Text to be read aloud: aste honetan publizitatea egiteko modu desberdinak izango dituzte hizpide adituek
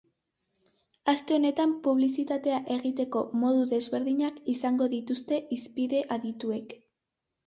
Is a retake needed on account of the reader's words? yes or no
no